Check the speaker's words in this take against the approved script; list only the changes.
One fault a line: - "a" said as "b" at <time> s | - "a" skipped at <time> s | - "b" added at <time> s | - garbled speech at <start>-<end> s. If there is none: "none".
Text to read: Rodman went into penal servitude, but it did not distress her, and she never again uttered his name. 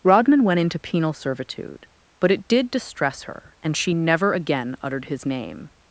- "not" skipped at 2.7 s